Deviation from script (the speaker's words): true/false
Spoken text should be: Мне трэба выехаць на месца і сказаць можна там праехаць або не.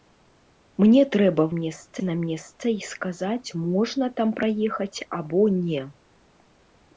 true